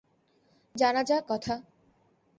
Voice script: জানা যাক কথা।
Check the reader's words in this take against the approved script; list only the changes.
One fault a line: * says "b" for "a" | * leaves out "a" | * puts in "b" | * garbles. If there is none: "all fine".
all fine